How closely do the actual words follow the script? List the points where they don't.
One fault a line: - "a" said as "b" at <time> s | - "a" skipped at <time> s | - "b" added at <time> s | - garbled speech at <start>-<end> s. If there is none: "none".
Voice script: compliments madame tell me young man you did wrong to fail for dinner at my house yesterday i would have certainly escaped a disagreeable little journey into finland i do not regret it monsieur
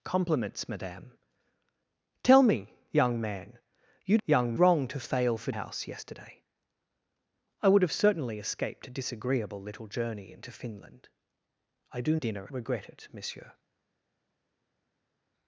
- "did" said as "young" at 4.2 s
- "dinner at my" skipped at 5.5 s
- "not" said as "dinner" at 12.1 s